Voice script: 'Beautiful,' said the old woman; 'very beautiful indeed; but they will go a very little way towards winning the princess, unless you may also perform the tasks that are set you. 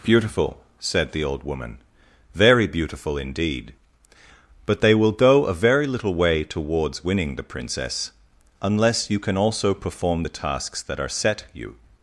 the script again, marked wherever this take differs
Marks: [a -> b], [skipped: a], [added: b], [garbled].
'Beautiful,' said the old woman; 'very beautiful indeed; but they will go a very little way towards winning the princess, unless you [may -> can] also perform the tasks that are set you.